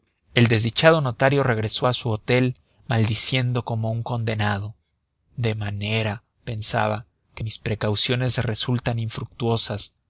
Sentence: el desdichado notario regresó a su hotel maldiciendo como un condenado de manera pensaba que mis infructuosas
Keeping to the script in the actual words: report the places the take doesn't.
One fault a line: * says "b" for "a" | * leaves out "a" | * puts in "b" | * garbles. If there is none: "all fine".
* puts in "precauciones resultan"